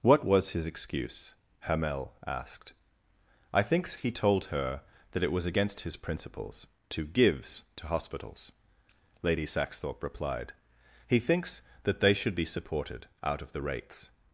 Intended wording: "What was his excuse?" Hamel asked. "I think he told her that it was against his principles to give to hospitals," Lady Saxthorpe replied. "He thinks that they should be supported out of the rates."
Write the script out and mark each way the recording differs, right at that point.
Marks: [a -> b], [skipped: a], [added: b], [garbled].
"What was his excuse?" Hamel asked. "I [think -> thinks] he told her that it was against his principles to [give -> gives] to hospitals," Lady Saxthorpe replied. "He thinks that they should be supported out of the rates."